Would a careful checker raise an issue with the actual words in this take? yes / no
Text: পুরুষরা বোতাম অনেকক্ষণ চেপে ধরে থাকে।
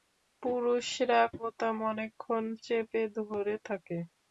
no